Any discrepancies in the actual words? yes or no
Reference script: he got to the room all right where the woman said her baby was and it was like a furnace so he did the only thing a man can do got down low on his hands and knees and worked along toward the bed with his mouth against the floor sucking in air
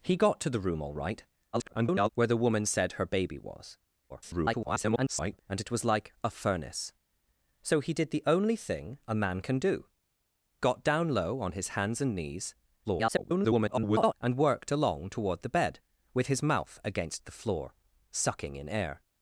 yes